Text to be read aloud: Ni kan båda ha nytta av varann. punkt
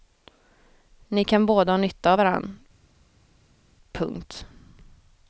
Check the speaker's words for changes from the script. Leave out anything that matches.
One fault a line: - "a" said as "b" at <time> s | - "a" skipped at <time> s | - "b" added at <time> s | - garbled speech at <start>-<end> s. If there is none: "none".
none